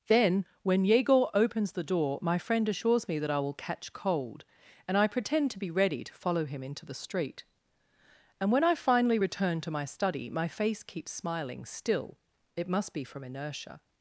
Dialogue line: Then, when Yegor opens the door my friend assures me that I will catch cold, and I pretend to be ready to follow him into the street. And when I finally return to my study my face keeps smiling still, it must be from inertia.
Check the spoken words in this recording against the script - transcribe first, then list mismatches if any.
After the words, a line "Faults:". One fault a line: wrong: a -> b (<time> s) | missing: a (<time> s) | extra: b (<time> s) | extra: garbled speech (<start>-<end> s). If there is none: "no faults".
Then, when Yegor opens the door my friend assures me that I will catch cold, and I pretend to be ready to follow him into the street. And when I finally return to my study my face keeps smiling still, it must be from inertia.
Faults:
no faults